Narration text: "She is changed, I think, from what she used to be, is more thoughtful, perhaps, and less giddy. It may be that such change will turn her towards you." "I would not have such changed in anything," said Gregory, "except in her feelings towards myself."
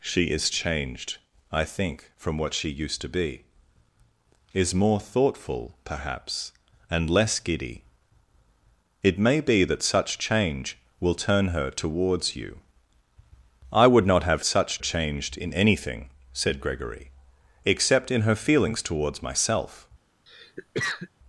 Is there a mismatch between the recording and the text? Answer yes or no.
no